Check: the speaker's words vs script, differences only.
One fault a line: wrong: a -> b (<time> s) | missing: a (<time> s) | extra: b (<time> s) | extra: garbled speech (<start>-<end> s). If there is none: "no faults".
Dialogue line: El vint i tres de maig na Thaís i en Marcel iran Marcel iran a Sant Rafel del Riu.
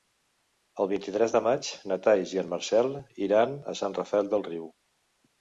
missing: Marcel iran (3.5 s)